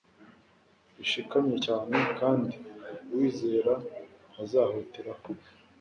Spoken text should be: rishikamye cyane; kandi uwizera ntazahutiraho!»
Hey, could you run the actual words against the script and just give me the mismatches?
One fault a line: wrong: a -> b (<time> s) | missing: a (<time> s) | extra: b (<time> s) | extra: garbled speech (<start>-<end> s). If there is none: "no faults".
no faults